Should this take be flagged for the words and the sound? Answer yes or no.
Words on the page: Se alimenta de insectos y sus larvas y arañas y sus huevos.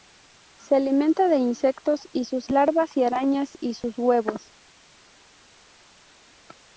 no